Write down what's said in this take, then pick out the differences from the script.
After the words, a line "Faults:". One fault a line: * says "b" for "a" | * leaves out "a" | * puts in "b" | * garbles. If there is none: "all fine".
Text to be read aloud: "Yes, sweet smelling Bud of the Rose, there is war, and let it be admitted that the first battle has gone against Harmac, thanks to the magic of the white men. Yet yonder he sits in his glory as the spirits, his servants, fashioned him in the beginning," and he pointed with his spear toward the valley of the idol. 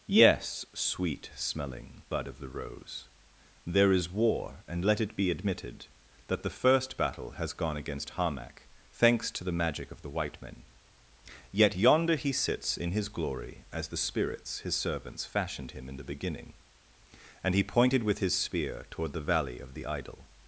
"Yes, sweet smelling Bud of the Rose, there is war, and let it be admitted that the first battle has gone against Harmac, thanks to the magic of the white men. Yet yonder he sits in his glory as the spirits, his servants, fashioned him in the beginning," and he pointed with his spear toward the valley of the idol.
Faults:
all fine